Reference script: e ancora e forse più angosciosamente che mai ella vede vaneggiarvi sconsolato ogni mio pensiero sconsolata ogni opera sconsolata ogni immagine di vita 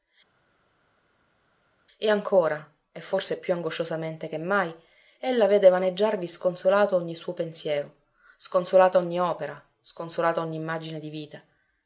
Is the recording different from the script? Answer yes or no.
yes